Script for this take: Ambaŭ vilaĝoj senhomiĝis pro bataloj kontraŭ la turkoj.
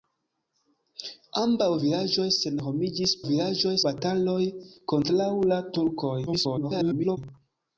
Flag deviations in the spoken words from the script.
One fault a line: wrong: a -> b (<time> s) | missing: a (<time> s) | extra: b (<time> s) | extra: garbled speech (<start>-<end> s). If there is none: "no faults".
wrong: pro -> vilaĝoj (3.3 s)
extra: garbled speech (6.3-7.2 s)